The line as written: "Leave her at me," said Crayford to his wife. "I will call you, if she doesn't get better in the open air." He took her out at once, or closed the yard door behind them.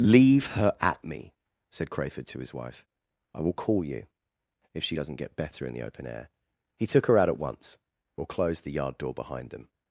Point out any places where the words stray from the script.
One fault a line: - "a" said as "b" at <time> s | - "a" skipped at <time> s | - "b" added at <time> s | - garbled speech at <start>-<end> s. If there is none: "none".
none